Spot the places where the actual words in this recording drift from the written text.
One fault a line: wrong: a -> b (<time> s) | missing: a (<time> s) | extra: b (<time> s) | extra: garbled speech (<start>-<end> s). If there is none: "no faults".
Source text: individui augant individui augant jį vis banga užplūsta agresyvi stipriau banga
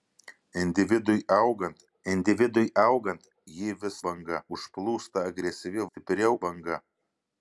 no faults